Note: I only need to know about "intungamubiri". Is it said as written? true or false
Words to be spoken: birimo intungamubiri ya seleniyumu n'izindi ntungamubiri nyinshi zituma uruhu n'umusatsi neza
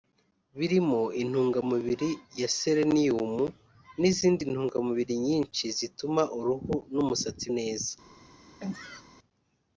true